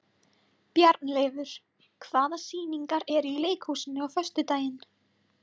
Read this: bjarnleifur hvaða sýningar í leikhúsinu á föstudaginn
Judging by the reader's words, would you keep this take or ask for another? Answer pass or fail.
fail